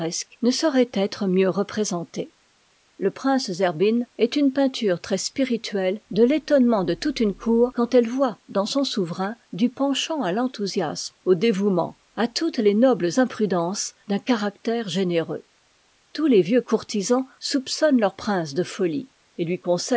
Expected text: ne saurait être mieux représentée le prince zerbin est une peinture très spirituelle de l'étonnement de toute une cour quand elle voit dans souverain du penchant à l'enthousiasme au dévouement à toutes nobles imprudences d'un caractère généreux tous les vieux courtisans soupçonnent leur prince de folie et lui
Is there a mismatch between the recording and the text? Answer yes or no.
yes